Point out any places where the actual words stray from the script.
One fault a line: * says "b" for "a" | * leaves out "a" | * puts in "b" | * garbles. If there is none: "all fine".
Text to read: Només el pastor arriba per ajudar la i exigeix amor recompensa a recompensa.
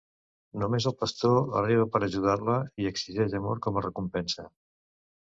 * says "com" for "recompensa"